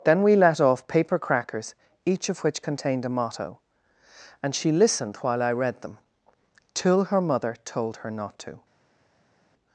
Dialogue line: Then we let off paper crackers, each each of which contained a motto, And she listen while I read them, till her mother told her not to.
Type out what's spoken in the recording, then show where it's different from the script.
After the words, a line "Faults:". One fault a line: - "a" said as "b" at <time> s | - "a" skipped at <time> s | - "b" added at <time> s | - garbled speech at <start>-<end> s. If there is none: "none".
Then we let off paper crackers, each of which contained a motto, And she listened while I read them, till her mother told her not to.
Faults:
- "each" skipped at 2.3 s
- "listen" said as "listened" at 4.7 s